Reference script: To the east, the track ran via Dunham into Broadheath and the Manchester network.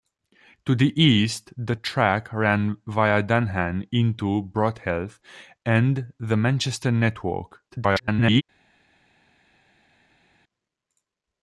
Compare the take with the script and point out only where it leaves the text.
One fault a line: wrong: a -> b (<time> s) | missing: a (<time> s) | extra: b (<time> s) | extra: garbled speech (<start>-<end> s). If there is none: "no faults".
extra: garbled speech (7.7-8.4 s)